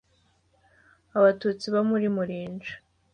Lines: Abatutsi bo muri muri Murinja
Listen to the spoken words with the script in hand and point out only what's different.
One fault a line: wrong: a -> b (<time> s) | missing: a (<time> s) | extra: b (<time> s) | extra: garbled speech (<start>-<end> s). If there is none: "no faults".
missing: muri (2.1 s)